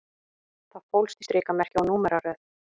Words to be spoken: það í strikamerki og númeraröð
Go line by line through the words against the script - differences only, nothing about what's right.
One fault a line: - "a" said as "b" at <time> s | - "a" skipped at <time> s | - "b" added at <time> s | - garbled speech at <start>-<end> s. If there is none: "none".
- "fólst" added at 0.9 s